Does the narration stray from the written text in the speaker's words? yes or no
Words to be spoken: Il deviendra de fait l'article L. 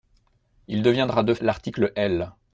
yes